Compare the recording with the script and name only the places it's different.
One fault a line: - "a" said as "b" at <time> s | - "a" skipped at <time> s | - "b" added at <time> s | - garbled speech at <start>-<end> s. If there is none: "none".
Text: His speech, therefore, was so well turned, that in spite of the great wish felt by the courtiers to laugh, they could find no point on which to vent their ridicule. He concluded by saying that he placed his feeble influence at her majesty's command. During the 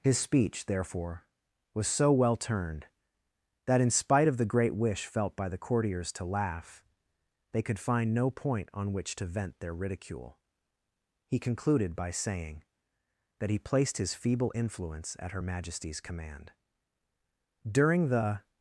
none